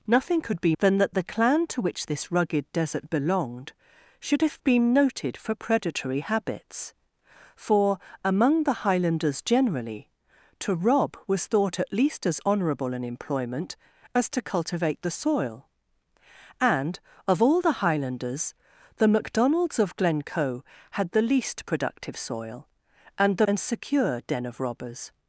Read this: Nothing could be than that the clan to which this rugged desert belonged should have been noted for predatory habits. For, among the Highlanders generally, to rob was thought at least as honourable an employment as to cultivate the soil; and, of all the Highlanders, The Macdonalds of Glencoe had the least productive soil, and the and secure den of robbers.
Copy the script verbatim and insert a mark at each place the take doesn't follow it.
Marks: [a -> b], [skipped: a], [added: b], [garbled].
Nothing could be than that the clan to which this rugged desert belonged should have been noted for predatory habits. For, among the Highlanders generally, to rob was thought at least as honourable an employment as to cultivate the soil; and, of all the Highlanders, The Macdonalds of Glencoe had the least productive soil, and the and secure den of robbers.